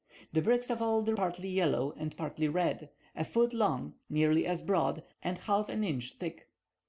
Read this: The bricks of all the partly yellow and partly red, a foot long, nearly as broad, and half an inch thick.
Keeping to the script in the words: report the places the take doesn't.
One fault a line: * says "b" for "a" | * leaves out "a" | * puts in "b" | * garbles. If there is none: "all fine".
all fine